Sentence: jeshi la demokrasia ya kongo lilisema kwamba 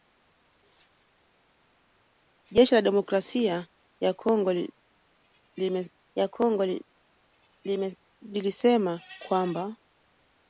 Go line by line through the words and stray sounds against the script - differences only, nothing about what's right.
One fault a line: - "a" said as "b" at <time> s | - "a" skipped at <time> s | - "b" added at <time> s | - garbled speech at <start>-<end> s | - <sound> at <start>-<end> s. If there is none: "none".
- "ya kongo" added at 6.1 s